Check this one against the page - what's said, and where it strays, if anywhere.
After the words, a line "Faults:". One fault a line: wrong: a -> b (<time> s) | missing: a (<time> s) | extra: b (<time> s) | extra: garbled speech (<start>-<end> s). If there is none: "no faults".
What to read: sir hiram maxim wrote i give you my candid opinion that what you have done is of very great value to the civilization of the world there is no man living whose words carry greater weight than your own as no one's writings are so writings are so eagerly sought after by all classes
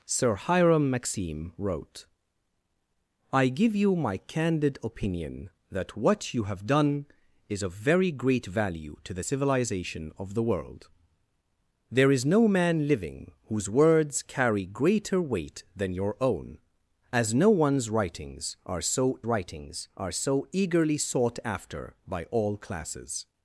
sir hiram maxim wrote i give you my candid opinion that what you have done is of very great value to the civilization of the world there is no man living whose words carry greater weight than your own as no one's writings are so writings are so eagerly sought after by all classes
Faults:
no faults